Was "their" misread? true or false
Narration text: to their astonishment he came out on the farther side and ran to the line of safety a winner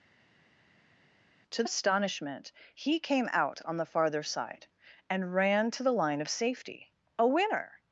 true